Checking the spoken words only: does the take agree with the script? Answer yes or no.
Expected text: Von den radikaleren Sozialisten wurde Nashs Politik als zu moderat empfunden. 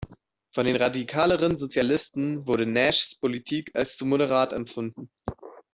yes